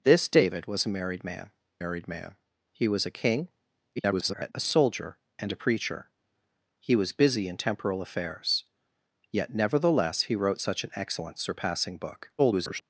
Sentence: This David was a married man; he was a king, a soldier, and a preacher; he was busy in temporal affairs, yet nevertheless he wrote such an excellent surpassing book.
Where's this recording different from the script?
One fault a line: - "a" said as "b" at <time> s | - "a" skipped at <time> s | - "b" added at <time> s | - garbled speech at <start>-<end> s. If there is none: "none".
- "married man" added at 1.8 s
- garbled speech at 4.0-4.5 s
- garbled speech at 12.4-12.8 s